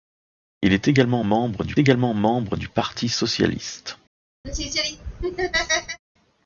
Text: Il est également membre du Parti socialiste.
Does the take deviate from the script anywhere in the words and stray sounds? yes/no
yes